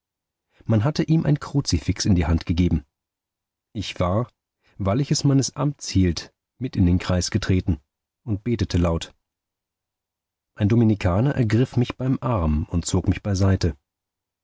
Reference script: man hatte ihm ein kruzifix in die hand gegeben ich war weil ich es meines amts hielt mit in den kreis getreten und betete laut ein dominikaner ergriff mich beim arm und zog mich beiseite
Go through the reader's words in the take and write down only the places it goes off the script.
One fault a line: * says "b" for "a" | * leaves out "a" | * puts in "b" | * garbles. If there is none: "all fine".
all fine